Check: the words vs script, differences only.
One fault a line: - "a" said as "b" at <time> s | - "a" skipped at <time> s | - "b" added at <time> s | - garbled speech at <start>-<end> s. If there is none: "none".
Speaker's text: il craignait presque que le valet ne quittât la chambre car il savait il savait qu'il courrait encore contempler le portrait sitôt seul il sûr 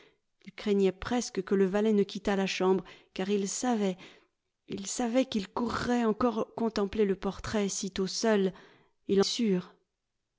none